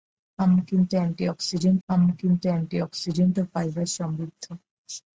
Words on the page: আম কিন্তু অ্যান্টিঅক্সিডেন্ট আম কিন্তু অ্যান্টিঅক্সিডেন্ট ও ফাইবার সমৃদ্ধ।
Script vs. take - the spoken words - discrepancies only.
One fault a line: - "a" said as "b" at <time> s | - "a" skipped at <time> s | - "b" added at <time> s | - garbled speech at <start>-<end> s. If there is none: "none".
none